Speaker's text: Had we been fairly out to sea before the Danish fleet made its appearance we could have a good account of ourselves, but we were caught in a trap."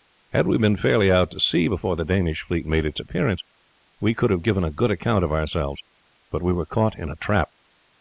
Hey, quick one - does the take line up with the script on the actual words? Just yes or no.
no